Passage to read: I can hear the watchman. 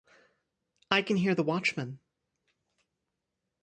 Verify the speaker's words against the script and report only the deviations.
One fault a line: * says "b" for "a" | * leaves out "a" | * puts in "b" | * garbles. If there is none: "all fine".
all fine